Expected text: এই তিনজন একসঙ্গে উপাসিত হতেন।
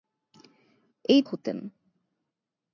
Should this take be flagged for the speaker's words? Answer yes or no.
yes